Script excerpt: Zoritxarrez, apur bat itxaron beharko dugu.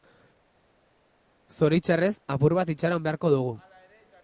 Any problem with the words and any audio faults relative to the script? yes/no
no